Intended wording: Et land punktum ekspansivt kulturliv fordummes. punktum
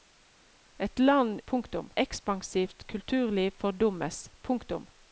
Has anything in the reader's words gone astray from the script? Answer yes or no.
no